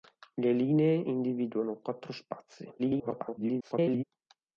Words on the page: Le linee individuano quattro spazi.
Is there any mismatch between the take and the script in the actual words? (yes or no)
yes